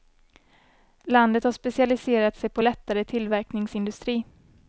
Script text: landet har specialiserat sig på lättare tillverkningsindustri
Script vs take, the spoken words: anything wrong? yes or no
no